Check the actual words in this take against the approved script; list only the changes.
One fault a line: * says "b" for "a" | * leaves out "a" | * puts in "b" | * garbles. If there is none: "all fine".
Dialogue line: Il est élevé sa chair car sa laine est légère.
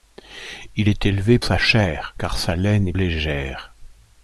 all fine